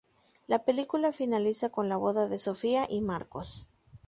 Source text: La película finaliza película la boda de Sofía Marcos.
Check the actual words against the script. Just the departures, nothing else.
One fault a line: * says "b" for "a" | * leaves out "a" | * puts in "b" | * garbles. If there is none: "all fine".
* says "con" for "película"
* puts in "y"